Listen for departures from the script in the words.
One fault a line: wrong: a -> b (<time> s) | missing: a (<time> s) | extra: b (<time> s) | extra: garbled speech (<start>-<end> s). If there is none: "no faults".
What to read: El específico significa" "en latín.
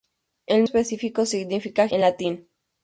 no faults